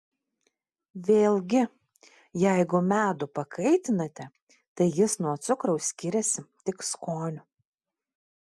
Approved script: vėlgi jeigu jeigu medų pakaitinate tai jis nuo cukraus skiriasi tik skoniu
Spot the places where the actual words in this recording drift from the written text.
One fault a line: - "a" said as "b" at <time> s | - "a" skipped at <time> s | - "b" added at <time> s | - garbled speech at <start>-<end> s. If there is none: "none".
- "jeigu" skipped at 2.8 s